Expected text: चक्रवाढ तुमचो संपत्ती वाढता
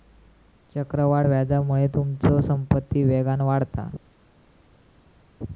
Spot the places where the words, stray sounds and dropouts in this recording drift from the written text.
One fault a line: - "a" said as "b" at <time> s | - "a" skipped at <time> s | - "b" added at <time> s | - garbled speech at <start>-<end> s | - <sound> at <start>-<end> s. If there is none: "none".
- "व्याजामुळे" added at 1.2 s
- "वेगान" added at 3.0 s